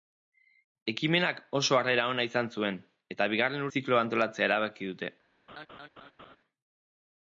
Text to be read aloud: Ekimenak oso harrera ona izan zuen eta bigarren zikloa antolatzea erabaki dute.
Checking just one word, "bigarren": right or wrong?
right